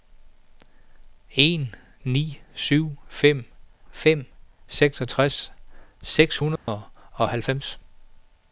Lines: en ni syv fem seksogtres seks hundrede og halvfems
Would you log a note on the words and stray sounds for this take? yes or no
yes